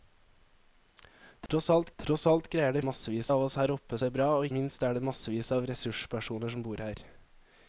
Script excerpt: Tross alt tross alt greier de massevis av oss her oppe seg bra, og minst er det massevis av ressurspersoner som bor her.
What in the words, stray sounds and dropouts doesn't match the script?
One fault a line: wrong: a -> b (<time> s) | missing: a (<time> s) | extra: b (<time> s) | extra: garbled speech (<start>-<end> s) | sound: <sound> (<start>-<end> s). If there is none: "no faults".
sound: dropout (1.5-1.5 s)